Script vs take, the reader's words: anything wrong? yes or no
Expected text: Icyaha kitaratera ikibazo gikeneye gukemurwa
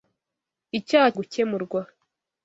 yes